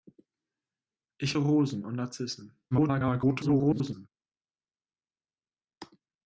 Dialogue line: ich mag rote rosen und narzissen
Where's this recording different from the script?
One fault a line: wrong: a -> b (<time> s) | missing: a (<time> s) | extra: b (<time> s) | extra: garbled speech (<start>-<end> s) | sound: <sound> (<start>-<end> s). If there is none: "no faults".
missing: mag rote (1.4 s)
extra: garbled speech (2.7-4.1 s)